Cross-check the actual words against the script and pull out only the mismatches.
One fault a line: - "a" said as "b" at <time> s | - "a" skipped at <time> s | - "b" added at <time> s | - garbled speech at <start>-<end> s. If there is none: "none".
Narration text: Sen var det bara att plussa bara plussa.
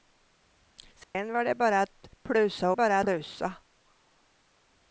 none